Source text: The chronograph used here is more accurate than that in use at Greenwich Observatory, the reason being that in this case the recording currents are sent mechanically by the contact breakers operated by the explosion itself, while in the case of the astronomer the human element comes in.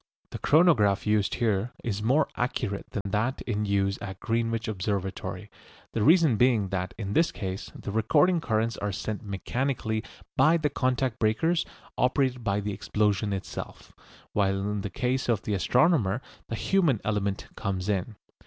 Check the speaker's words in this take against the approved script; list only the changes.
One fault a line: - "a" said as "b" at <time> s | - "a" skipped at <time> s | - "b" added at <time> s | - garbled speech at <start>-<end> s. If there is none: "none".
none